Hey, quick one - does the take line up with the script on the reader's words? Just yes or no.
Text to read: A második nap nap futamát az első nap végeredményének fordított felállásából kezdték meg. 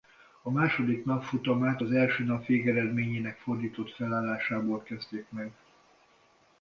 no